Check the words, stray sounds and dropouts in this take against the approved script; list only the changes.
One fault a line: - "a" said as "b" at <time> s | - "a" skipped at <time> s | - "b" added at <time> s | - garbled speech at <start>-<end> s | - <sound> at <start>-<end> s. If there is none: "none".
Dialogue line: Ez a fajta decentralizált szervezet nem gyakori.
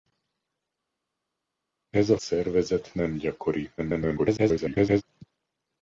- "fajta decentralizált" skipped at 2.2 s
- garbled speech at 3.8-5.0 s